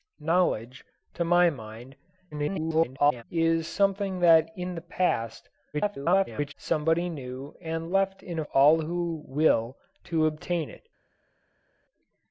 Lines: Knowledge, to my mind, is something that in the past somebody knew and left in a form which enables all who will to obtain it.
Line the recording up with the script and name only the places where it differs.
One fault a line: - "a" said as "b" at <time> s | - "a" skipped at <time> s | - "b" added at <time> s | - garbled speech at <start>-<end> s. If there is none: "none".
- garbled speech at 2.3-3.2 s
- garbled speech at 5.7-6.5 s
- "form which enables" skipped at 8.4 s